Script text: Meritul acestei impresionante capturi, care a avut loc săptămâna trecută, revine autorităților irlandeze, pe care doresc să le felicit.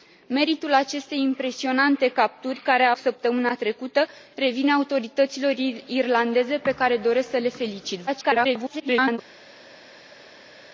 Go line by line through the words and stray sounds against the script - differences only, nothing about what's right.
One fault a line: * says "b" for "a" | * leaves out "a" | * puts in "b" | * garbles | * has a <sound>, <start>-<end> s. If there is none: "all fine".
* leaves out "avut loc"
* garbles